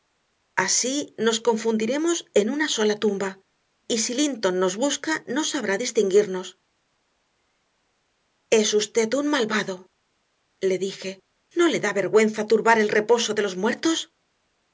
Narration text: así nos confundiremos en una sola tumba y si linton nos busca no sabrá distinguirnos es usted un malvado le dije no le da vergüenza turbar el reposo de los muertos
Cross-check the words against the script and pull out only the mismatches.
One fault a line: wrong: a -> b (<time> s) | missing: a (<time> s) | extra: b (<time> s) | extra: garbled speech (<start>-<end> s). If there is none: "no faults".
no faults